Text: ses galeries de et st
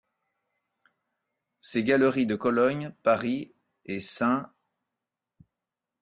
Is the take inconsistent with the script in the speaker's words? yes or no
yes